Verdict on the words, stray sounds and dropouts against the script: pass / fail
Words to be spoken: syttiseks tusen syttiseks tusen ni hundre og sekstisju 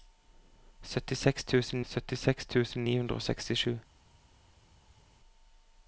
pass